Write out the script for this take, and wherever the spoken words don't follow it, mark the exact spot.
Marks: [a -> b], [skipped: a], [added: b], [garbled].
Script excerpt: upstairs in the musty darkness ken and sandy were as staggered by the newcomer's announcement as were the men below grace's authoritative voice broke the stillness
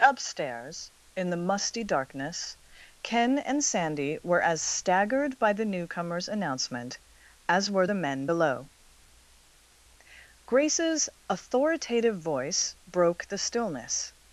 upstairs in the musty darkness ken and sandy were as staggered by the newcomer's announcement as were the men below grace's authoritative voice broke the stillness